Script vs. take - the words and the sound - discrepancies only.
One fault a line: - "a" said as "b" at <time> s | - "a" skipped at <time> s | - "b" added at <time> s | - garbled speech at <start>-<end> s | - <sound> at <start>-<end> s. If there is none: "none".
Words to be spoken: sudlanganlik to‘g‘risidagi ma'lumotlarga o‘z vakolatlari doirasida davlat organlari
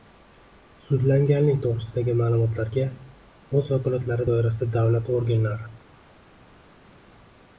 none